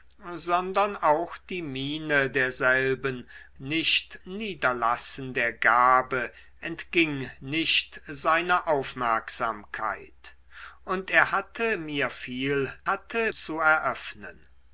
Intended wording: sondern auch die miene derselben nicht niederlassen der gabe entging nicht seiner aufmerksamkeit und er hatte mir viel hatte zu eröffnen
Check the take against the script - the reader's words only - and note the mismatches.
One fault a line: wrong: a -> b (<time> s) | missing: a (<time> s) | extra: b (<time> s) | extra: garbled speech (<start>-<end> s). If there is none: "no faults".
no faults